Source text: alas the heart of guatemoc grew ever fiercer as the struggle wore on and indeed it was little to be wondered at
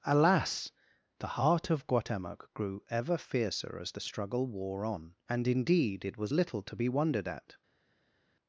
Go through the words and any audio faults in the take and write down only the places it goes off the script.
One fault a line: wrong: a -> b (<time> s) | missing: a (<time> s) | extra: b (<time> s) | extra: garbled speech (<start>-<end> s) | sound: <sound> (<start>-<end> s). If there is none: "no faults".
no faults